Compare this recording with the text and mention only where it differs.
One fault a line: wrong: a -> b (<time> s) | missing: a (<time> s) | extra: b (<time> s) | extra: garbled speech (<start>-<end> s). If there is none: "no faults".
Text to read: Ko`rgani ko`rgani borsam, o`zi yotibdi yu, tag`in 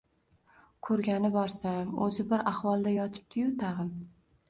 missing: ko`rgani (1.3 s)
extra: bir ahvolda (2.3 s)